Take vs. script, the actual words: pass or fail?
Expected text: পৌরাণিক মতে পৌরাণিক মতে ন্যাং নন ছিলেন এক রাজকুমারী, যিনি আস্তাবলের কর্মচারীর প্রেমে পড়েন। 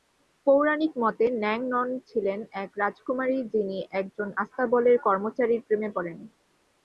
fail